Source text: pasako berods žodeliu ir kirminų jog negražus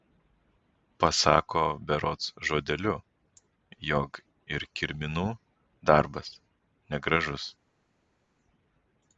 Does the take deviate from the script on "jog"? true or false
true